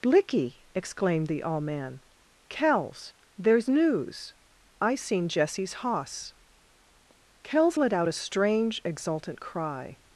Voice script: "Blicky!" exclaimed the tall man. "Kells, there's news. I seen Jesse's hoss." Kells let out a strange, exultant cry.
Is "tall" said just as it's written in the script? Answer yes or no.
no